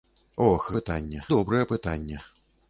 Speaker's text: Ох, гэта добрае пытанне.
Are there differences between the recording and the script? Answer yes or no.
yes